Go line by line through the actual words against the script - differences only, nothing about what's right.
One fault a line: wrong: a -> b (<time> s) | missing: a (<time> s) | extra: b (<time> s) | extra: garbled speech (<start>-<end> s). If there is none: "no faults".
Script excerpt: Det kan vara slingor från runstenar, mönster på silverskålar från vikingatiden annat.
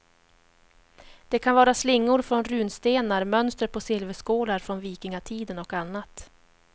extra: och (5.6 s)